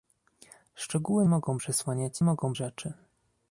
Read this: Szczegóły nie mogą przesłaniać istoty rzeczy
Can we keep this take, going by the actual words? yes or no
no